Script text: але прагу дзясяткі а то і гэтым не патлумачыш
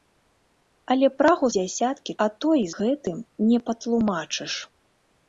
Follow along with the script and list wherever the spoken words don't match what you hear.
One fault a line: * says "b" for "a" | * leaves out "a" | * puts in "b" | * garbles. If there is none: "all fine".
all fine